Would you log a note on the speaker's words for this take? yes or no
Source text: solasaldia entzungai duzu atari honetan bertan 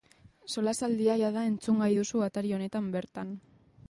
yes